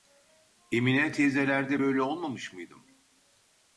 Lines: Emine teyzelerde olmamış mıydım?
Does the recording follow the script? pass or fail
fail